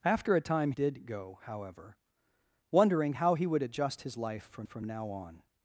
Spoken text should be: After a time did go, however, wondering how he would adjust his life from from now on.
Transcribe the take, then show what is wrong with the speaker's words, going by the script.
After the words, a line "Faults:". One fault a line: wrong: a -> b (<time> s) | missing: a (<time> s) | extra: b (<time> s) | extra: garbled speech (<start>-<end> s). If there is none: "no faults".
After a time did go, however, wondering how he would adjust his life from from now on.
Faults:
no faults